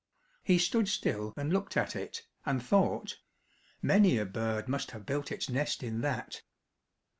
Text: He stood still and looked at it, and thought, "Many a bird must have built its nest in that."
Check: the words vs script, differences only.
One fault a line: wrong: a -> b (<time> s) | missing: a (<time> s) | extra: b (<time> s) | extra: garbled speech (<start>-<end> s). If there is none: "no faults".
no faults